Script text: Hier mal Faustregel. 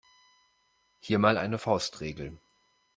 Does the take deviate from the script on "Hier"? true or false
false